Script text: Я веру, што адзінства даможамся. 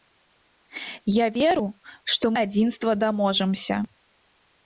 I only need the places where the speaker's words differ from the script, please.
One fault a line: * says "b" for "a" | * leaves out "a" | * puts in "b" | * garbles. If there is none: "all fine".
all fine